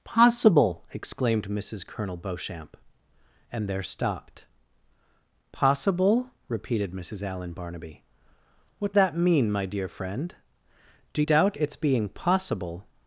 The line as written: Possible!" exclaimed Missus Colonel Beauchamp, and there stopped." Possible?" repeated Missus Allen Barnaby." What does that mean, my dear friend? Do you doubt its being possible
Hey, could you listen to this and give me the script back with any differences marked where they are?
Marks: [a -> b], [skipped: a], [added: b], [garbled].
Possible!" exclaimed Missus Colonel Beauchamp, and there stopped." Possible?" repeated Missus Allen Barnaby." What [skipped: does] that mean, my dear friend? Do [skipped: you] doubt its being possible